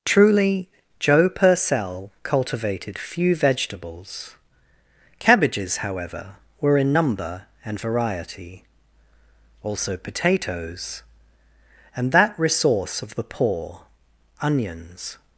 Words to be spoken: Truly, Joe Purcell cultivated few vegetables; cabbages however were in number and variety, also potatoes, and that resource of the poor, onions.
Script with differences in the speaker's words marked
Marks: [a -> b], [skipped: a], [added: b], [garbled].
Truly, Joe Purcell cultivated few vegetables; cabbages however were in number and variety, also potatoes, and that resource of the poor, onions.